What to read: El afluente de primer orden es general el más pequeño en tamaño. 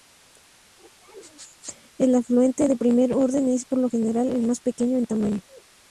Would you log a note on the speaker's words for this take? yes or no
yes